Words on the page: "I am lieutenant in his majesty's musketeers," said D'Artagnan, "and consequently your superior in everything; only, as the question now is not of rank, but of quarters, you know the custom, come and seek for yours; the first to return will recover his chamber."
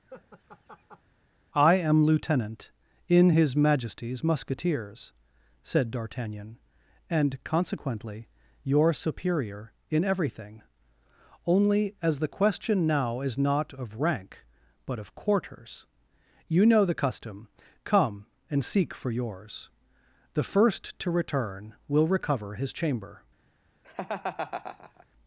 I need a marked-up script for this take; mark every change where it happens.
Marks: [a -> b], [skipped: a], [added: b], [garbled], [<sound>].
[laugh] "I am lieutenant in his majesty's musketeers," said D'Artagnan, "and consequently your superior in everything; only, as the question now is not of rank, but of quarters, you know the custom, come and seek for yours; the first to return will recover his chamber." [laugh]